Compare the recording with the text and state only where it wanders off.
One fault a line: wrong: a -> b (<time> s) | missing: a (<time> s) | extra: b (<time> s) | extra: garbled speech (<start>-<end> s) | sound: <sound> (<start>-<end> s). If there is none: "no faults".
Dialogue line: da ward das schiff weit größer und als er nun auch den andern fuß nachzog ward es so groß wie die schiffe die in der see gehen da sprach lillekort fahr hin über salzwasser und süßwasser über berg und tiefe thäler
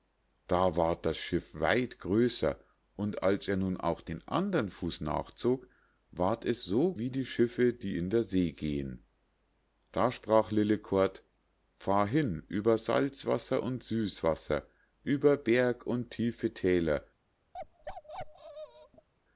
missing: groß (6.9 s)
sound: bark (17.5-19.1 s)